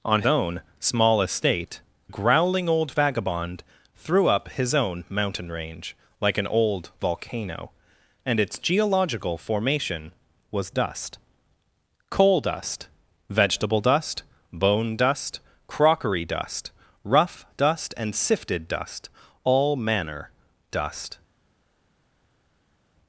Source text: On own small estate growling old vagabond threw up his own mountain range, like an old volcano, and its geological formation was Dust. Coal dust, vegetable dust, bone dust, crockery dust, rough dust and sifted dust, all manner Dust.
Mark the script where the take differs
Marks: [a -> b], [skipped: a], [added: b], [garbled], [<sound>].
On own small estate growling old vagabond threw up his own mountain range, like an old volcano, and its geological formation was Dust. Coal dust, vegetable dust, bone dust, crockery dust, rough dust and sifted dust, all manner Dust.